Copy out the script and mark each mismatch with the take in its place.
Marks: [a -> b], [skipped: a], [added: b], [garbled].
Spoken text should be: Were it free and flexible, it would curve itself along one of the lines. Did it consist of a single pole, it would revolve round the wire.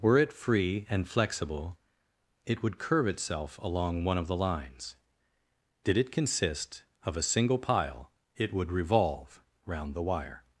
Were it free and flexible, it would curve itself along one of the lines. Did it consist of a single [pole, -> pile] it would revolve round the wire.